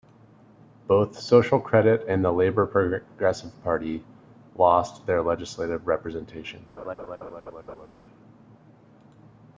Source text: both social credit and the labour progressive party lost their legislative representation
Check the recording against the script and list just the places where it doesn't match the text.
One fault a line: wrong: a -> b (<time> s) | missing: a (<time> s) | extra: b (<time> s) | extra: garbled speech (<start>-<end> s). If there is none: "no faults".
no faults